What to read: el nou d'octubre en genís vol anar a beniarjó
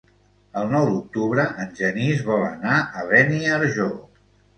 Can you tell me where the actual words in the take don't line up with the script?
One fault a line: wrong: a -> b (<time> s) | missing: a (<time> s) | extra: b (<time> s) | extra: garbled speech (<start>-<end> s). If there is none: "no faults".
no faults